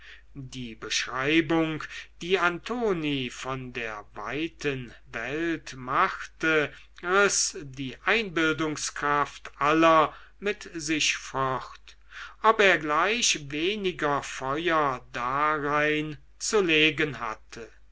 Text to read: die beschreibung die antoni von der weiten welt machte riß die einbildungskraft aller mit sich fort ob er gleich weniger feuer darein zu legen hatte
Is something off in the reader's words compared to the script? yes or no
no